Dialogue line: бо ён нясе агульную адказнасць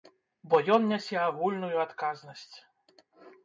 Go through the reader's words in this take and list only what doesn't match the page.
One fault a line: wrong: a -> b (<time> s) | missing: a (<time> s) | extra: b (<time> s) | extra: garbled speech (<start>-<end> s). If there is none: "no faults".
no faults